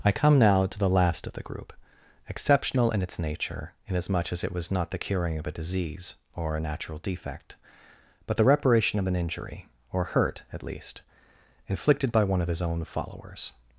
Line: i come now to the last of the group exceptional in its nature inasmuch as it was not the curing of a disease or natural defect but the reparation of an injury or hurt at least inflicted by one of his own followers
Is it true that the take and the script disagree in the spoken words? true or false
true